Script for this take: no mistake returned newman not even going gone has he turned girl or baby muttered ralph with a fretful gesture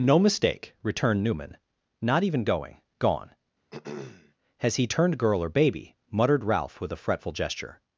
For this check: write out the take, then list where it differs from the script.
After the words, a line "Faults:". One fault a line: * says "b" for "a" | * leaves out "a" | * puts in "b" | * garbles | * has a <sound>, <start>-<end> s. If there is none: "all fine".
no mistake returned newman not even going gone has he turned girl or baby muttered ralph with a fretful gesture
Faults:
* has a throat clearing, 3.7-4.3 s